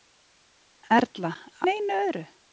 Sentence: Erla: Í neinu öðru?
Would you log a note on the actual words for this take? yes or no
no